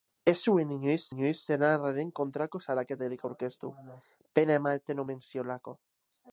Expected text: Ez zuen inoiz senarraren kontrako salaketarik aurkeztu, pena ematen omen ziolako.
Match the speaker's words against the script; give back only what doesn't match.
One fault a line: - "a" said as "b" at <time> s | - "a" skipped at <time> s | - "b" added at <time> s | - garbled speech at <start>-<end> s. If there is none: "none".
- "inoiz" added at 1.1 s